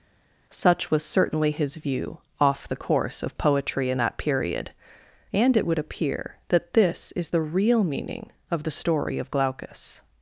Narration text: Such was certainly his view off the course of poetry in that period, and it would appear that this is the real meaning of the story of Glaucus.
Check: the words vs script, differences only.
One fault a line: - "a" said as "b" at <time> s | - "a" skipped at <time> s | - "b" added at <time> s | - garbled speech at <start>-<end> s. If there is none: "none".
none